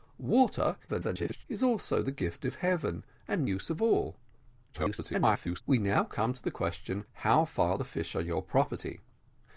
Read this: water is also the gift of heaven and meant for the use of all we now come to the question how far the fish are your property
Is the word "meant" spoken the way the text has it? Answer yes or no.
no